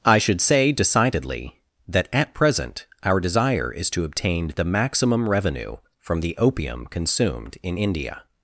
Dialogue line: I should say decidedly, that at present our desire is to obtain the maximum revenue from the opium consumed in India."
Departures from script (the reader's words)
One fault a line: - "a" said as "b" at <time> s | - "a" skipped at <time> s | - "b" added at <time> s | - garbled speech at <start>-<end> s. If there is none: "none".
none